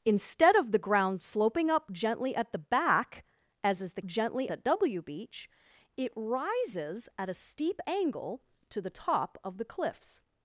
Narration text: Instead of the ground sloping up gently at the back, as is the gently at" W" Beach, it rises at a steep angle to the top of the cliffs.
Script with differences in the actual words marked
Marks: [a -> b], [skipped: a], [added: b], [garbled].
Instead of the ground sloping up gently at the back, as is the gently at" W" Beach, it rises at a steep angle to the top of the cliffs.